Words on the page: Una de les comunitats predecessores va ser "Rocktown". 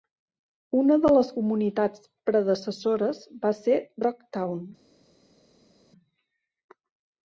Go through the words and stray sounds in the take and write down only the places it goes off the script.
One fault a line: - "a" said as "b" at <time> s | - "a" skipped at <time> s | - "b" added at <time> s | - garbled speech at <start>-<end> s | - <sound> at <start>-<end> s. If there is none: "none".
none